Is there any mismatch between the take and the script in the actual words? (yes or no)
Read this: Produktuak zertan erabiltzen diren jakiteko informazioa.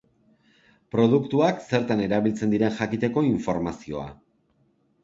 no